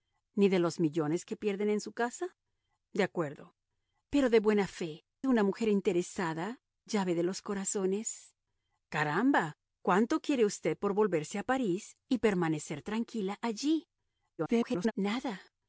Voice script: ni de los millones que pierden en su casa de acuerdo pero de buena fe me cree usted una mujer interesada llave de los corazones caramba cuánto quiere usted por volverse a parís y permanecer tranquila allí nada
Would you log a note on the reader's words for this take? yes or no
yes